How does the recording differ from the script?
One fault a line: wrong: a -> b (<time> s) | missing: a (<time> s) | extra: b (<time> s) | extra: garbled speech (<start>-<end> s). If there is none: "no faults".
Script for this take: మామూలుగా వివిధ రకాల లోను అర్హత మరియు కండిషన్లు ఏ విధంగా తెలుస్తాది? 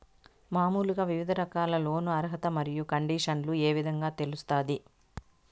no faults